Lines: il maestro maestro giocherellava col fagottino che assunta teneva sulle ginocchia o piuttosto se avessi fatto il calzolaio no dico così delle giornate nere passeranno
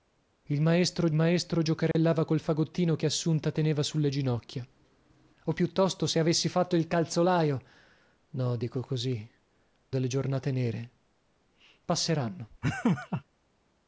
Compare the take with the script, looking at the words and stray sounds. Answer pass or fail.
fail